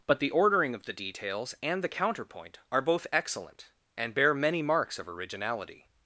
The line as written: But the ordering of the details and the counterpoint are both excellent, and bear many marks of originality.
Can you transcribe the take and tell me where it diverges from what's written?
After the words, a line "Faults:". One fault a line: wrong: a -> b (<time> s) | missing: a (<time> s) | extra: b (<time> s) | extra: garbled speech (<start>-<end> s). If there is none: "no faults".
But the ordering of the details and the counterpoint are both excellent, and bear many marks of originality.
Faults:
no faults